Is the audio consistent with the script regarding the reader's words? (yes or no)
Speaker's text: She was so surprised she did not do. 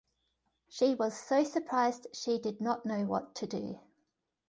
no